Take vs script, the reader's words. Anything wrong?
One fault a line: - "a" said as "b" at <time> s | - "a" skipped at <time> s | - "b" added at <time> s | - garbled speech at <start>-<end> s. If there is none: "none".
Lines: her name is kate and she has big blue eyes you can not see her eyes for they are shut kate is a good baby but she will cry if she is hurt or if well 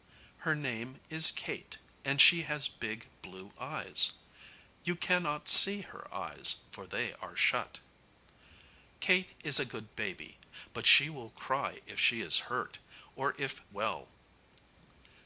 none